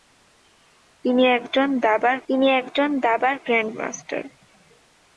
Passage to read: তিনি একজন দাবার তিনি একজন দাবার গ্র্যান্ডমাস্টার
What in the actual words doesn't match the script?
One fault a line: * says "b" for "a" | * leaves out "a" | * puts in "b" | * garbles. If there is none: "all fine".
all fine